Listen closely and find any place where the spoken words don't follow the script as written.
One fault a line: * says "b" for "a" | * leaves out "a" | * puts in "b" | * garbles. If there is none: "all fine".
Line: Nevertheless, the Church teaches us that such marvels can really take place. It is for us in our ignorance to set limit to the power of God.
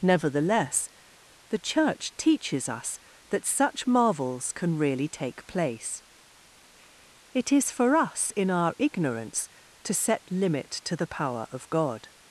all fine